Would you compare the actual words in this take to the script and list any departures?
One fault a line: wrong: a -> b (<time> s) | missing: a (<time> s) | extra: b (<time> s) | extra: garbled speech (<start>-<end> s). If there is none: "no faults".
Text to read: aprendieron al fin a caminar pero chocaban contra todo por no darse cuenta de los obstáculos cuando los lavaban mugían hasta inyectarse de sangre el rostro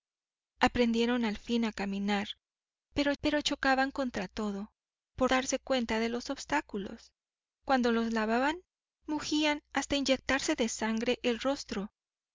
extra: pero (3.2 s)
missing: no (5.3 s)